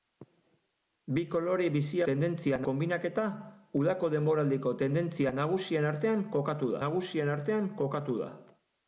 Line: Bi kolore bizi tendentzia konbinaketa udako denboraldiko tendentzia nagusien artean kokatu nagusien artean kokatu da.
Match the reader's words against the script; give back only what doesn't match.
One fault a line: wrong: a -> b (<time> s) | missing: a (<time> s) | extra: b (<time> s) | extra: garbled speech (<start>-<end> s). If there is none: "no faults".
no faults